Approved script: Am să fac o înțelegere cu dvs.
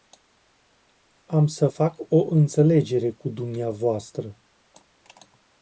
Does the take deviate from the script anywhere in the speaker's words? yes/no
no